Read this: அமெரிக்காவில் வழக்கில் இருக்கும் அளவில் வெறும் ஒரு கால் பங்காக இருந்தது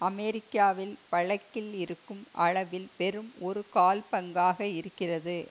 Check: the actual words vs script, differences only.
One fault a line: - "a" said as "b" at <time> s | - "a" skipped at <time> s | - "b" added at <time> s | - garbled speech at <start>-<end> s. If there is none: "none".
- "இருந்தது" said as "இருக்கிறது" at 4.8 s